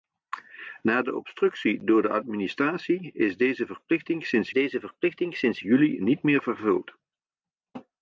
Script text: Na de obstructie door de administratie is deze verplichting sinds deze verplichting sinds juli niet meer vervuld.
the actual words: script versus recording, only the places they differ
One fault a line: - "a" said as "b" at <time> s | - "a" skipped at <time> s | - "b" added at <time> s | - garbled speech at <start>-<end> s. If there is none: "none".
none